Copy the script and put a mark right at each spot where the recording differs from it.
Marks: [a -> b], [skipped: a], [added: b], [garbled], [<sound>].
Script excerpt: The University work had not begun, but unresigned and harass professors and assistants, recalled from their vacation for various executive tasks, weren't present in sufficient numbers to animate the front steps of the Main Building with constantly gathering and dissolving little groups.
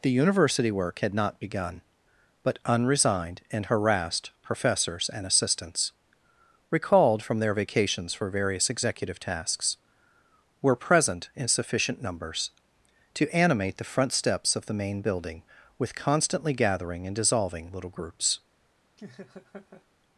The University work had not begun, but unresigned and [harass -> harassed] professors and assistants, recalled from their [vacation -> vacations] for various executive tasks, [weren't -> were] present in sufficient numbers to animate the front steps of the Main Building with constantly gathering and dissolving little groups. [laugh]